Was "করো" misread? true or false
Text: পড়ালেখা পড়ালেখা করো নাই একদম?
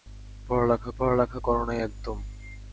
false